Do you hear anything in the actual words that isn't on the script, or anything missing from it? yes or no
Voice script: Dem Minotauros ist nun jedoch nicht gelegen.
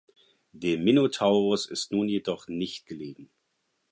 no